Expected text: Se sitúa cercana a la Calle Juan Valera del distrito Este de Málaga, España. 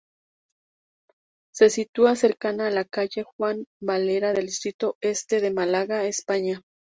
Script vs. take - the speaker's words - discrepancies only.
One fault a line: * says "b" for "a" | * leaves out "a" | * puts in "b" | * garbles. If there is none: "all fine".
all fine